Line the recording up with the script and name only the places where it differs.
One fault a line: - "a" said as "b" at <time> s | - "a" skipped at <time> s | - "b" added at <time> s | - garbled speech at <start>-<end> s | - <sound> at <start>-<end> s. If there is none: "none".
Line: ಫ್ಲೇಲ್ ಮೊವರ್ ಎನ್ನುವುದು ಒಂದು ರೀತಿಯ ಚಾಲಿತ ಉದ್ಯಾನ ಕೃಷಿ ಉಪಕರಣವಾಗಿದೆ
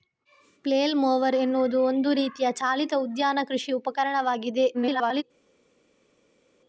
- garbled speech at 4.7-5.2 s